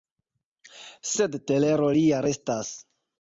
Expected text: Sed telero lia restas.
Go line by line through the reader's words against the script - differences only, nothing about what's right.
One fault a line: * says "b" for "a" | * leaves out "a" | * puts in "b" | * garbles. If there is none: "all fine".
all fine